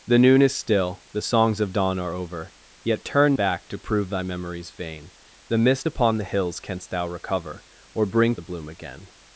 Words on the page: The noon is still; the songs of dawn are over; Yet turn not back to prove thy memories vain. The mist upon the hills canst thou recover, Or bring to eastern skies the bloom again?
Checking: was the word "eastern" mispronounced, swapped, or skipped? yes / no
yes